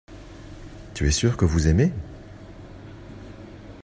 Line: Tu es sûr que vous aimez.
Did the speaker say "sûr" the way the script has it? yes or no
yes